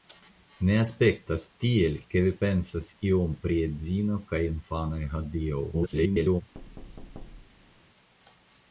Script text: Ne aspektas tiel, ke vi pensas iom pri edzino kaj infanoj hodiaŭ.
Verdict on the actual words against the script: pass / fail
fail